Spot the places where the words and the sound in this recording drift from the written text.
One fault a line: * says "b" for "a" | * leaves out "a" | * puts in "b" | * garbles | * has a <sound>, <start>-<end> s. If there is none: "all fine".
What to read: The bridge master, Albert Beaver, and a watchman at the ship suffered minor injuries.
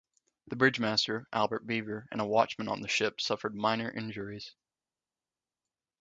* says "on" for "at"